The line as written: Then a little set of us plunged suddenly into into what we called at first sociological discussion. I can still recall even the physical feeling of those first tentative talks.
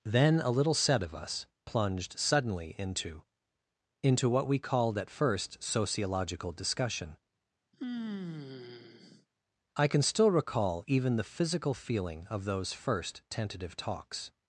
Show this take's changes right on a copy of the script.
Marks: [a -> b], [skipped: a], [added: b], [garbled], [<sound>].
Then a little set of us plunged suddenly into into what we called at first sociological discussion. [sigh] I can still recall even the physical feeling of those first tentative talks.